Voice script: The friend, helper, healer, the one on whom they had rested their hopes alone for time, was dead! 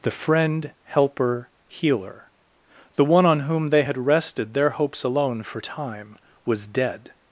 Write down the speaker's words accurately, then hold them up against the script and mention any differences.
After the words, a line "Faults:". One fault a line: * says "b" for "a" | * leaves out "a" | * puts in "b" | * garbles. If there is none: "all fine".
The friend, helper, healer, the one on whom they had rested their hopes alone for time, was dead!
Faults:
all fine